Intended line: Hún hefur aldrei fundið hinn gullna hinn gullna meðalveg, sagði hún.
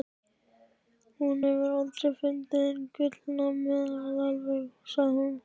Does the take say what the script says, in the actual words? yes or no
no